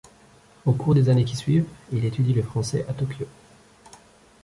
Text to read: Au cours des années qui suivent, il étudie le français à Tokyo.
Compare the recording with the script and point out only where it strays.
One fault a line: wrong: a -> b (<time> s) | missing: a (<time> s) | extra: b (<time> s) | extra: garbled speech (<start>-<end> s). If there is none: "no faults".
no faults